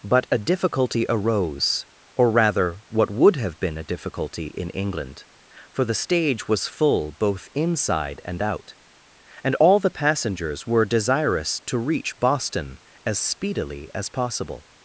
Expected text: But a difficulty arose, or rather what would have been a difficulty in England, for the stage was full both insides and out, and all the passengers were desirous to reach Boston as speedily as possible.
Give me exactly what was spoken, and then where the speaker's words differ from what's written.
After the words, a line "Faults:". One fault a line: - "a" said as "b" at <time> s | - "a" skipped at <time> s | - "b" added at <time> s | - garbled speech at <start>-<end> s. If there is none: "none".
But a difficulty arose, or rather what would have been a difficulty in England, for the stage was full both inside and out, and all the passengers were desirous to reach Boston as speedily as possible.
Faults:
- "insides" said as "inside" at 7.5 s